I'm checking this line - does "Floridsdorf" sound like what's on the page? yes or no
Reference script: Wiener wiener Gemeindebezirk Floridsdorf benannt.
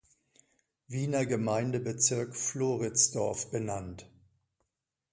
yes